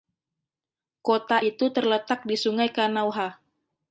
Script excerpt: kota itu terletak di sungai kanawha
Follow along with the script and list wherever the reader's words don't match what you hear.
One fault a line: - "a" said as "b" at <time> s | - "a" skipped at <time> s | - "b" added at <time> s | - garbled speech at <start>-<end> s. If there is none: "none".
none